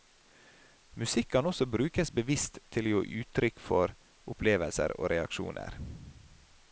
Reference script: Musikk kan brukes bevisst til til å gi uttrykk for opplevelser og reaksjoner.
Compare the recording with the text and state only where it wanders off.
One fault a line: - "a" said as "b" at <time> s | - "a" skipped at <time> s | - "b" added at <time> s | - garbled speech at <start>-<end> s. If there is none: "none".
- "også" added at 1.4 s
- "til" skipped at 2.9 s